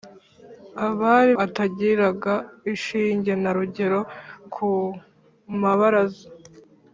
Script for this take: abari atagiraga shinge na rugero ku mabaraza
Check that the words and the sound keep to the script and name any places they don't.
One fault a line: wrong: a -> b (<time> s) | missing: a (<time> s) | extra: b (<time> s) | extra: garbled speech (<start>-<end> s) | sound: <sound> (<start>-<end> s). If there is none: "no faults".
no faults